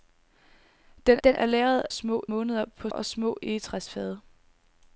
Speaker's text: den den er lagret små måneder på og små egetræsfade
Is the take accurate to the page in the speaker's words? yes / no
yes